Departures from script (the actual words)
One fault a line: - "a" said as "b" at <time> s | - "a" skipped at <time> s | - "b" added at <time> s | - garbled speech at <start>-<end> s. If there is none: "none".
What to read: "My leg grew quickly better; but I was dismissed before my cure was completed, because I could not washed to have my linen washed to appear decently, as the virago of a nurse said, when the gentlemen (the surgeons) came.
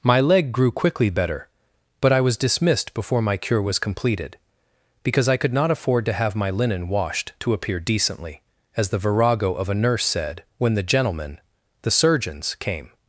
- "washed" said as "afford" at 5.7 s